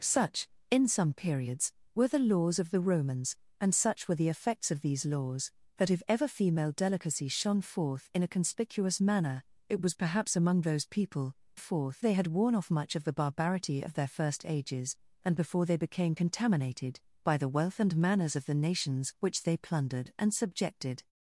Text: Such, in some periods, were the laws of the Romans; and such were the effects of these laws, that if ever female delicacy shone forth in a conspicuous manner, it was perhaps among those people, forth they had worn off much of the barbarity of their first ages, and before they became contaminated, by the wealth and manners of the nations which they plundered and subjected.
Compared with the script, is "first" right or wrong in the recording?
right